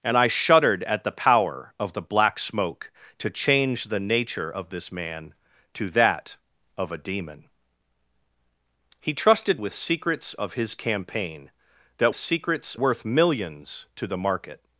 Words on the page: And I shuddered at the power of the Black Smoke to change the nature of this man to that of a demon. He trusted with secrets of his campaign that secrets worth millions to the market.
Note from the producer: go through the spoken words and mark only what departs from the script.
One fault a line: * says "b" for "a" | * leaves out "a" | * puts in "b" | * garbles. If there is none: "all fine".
all fine